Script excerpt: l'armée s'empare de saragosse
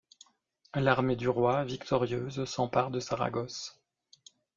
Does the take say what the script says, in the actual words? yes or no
no